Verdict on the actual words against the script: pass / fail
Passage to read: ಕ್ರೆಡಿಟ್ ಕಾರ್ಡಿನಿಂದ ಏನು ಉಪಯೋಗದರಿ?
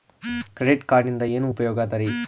pass